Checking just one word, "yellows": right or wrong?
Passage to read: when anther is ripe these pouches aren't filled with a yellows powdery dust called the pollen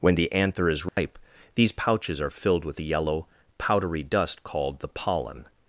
wrong